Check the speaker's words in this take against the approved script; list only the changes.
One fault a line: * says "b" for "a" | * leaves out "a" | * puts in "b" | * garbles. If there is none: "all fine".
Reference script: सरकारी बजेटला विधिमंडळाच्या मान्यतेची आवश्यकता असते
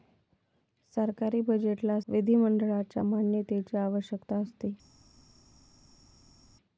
all fine